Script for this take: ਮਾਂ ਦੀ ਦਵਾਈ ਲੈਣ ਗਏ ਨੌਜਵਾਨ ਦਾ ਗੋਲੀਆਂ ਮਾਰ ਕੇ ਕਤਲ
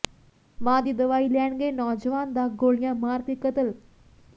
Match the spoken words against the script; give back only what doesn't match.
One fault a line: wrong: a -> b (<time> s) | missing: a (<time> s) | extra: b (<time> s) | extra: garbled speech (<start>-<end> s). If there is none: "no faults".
no faults